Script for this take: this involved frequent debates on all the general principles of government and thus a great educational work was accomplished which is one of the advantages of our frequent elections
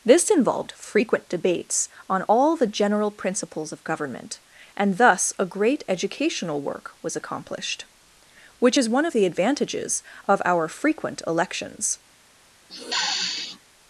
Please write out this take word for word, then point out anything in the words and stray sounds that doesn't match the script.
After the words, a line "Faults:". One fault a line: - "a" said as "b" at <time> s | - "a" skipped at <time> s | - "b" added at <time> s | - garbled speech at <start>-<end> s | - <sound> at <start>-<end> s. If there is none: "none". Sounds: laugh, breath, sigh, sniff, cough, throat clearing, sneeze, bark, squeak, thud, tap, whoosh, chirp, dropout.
this involved frequent debates on all the general principles of government and thus a great educational work was accomplished which is one of the advantages of our frequent elections
Faults:
- sniff at 12.7-13.6 s